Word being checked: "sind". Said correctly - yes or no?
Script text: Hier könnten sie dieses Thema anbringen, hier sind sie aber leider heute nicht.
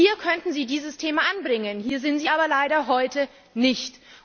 yes